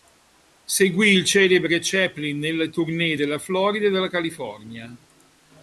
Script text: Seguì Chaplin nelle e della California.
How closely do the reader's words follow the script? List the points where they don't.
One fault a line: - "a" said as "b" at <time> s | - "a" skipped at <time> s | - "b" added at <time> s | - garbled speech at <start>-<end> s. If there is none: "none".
- "il celebre" added at 1.1 s
- "tournée della Florida" added at 2.7 s